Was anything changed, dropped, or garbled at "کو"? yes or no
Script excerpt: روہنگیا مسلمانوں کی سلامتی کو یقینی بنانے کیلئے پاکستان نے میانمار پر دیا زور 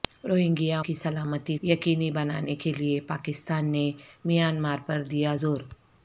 yes